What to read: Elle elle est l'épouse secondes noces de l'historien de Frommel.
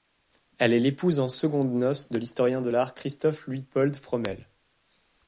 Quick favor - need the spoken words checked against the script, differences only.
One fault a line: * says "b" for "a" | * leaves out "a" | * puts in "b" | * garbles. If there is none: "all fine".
* leaves out "elle"
* puts in "en"
* puts in "l'art Christoph Luitpold"